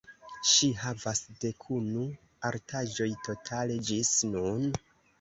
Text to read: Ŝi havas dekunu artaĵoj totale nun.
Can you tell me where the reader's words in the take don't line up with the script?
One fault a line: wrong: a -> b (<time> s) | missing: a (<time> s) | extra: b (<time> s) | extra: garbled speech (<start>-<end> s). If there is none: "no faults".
extra: ĝis (3.9 s)